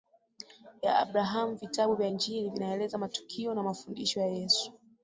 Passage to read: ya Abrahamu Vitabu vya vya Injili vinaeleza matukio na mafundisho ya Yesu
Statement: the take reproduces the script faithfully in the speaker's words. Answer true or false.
false